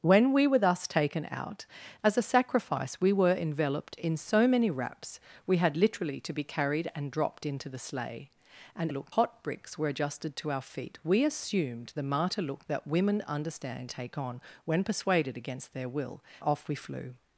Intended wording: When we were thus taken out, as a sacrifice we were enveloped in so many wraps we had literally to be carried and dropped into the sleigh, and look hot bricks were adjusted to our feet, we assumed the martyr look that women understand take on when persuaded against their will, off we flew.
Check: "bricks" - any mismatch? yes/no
no